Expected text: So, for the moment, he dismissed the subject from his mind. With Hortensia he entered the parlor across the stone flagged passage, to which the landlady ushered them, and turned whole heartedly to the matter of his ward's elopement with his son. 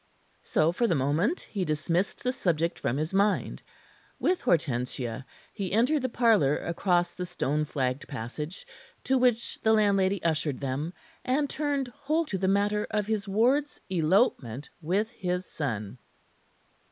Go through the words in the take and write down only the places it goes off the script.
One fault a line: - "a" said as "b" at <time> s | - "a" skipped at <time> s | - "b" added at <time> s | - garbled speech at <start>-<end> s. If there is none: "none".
- "heartedly" skipped at 12.2 s